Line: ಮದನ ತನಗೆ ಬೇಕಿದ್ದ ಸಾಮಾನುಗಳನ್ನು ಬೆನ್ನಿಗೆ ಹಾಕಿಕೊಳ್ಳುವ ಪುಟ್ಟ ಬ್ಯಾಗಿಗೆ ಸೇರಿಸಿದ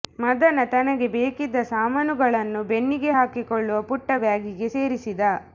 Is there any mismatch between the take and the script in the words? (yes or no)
no